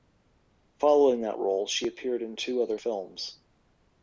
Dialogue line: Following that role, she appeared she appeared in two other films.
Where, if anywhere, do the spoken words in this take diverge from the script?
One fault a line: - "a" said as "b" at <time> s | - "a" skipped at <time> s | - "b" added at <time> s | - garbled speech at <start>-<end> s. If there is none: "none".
- "she appeared" skipped at 2.2 s